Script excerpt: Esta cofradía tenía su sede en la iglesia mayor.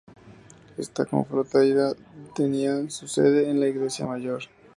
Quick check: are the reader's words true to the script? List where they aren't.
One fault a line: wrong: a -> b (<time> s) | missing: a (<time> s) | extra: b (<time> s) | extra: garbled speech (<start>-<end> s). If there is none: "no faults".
no faults